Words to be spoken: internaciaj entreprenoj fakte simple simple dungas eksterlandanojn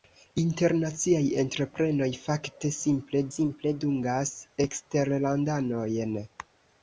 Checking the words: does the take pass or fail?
pass